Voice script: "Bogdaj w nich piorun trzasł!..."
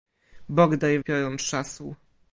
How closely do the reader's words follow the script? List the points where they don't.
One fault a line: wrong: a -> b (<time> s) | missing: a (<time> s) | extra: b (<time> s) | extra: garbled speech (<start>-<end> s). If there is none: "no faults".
missing: w nich (1.0 s)